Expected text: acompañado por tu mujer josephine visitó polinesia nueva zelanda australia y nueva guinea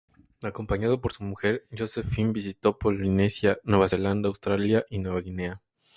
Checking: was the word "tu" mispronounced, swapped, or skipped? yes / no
yes